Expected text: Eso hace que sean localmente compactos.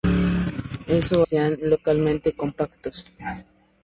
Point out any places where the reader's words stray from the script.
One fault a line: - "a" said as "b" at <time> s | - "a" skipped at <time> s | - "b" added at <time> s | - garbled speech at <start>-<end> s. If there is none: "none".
- "hace que" skipped at 1.3 s